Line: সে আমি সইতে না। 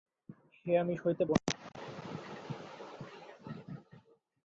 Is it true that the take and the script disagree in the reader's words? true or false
false